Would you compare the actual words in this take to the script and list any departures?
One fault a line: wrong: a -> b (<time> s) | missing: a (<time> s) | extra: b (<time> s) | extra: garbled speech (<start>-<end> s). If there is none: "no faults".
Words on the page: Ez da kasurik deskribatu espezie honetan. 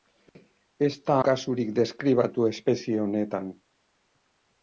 no faults